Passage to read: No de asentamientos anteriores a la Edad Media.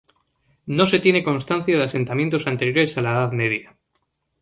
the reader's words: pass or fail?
fail